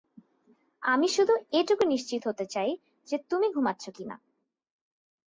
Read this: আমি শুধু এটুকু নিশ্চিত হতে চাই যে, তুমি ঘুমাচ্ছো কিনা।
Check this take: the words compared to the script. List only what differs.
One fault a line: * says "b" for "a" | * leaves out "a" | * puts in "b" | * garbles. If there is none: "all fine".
all fine